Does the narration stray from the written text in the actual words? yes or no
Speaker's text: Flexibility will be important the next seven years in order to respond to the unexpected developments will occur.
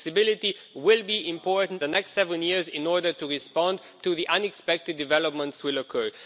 no